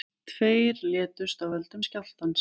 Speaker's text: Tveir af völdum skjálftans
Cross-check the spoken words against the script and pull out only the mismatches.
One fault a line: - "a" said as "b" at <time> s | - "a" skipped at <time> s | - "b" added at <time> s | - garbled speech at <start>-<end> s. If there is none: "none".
- "létust" added at 0.9 s